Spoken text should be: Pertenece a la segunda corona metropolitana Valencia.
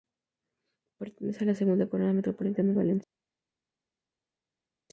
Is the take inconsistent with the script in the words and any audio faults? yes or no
no